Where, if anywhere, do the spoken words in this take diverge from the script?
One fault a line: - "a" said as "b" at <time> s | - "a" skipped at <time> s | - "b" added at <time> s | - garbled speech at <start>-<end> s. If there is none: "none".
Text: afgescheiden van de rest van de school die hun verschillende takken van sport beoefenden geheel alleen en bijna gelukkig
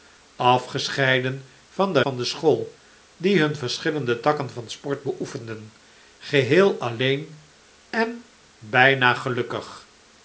- "rest" skipped at 2.0 s